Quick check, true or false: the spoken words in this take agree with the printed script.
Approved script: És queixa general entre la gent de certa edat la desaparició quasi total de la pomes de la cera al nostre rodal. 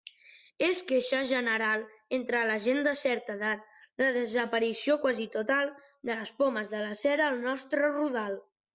false